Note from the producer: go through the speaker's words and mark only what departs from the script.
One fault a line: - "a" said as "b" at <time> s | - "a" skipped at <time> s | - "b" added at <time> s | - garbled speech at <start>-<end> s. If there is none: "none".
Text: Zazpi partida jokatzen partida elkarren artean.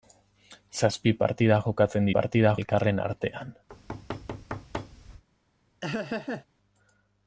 none